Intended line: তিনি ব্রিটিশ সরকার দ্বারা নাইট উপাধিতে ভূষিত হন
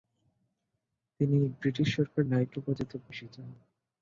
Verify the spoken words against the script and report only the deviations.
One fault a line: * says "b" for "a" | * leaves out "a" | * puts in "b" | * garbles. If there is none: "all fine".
* leaves out "দ্বারা"